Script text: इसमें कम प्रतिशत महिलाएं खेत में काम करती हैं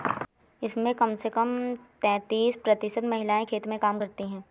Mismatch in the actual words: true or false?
true